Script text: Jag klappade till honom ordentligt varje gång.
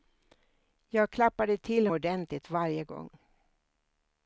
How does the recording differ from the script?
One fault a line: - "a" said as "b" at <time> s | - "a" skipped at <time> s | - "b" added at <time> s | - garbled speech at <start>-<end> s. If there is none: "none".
- "honom" skipped at 1.9 s